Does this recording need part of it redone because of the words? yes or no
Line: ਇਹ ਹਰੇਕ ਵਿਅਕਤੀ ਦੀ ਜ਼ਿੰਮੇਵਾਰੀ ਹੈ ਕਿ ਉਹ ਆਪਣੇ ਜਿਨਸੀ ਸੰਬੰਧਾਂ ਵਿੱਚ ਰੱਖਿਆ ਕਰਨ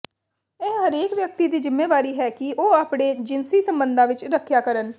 no